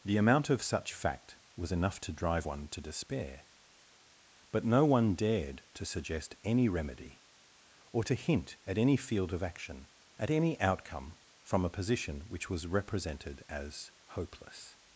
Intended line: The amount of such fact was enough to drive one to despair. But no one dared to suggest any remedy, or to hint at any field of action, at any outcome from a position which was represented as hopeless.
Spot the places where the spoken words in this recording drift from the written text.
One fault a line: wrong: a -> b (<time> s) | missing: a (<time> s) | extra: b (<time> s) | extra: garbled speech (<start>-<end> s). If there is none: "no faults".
no faults